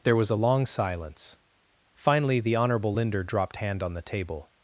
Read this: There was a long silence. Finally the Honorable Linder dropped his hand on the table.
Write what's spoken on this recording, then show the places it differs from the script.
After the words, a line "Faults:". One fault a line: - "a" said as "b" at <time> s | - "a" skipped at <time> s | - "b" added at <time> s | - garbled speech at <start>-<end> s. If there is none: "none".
There was a long silence. Finally the Honorable Linder dropped hand on the table.
Faults:
- "his" skipped at 3.6 s